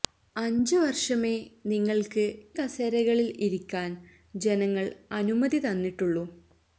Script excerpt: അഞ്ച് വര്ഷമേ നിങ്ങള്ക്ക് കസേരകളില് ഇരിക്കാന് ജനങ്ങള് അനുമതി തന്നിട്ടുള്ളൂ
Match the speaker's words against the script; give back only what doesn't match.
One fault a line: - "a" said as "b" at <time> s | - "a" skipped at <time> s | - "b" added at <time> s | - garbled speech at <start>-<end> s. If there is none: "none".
none